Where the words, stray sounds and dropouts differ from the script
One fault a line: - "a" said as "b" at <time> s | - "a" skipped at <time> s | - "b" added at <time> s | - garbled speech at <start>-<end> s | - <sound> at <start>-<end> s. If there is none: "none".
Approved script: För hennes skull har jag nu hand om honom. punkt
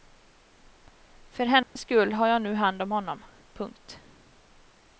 - dropout at 1.6-1.8 s